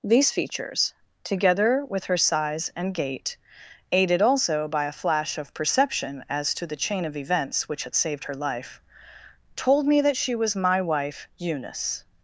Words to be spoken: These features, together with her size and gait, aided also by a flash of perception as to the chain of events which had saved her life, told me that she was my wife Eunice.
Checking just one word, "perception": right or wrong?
right